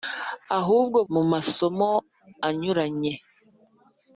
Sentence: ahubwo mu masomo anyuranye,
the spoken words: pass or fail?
pass